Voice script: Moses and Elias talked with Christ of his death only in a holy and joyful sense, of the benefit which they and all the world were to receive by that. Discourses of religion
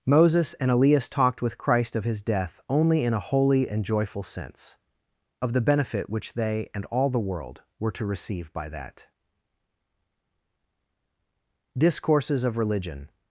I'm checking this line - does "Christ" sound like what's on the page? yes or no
yes